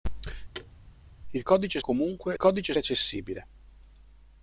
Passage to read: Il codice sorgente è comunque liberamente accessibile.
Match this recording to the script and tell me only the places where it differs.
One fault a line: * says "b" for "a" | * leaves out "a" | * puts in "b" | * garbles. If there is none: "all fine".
* leaves out "sorgente"
* says "codice" for "liberamente"